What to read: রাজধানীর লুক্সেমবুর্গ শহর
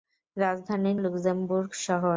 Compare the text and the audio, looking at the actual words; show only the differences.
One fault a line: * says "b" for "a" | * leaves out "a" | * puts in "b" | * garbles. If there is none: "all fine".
all fine